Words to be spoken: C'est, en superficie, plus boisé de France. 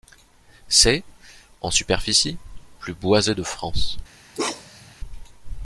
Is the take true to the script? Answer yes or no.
yes